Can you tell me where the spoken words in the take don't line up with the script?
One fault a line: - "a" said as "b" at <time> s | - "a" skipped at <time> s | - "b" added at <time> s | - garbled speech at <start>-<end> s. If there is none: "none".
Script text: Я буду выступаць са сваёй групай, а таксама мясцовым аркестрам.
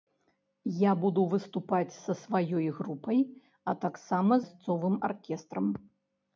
none